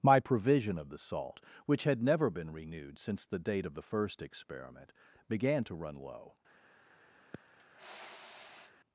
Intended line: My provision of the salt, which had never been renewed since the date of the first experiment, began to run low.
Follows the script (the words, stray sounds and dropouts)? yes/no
no